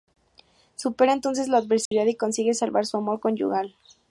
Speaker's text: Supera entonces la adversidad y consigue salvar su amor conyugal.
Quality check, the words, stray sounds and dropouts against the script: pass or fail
fail